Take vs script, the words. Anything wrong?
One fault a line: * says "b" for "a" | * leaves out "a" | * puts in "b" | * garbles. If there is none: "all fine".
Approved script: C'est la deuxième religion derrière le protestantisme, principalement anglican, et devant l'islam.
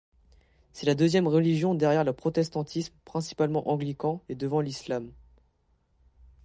all fine